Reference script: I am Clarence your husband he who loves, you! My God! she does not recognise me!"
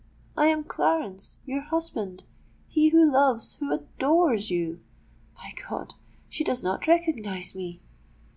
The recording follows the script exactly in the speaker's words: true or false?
false